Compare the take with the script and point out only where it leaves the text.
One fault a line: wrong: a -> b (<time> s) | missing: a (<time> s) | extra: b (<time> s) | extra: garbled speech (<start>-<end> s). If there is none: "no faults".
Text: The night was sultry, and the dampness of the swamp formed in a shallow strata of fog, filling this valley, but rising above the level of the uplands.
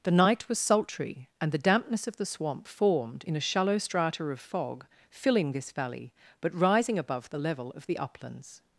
no faults